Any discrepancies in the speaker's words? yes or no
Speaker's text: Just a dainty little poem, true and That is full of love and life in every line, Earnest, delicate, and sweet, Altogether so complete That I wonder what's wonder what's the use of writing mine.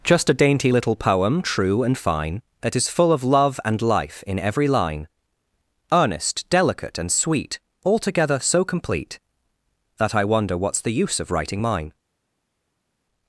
yes